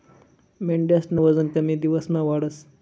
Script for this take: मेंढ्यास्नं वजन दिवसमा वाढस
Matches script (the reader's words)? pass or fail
fail